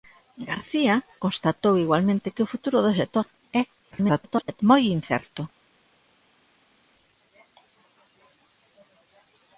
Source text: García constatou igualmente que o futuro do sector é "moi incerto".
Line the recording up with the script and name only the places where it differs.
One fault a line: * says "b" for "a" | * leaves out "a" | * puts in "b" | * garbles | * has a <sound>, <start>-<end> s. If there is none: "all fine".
* garbles